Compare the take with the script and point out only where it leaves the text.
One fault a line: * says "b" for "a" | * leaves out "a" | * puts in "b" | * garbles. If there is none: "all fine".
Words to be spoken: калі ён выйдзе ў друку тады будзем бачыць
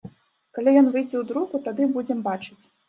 all fine